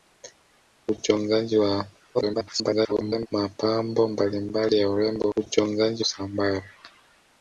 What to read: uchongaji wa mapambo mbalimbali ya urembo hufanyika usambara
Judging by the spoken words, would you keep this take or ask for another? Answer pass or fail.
fail